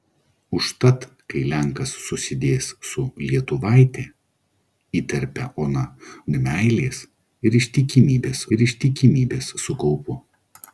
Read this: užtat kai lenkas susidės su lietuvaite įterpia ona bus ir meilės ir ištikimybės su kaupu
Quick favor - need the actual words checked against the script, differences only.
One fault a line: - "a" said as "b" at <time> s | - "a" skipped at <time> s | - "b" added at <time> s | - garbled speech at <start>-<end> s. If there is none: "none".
- "bus" said as "ir meilės" at 6.3 s
- "meilės" said as "ištikimybės" at 7.6 s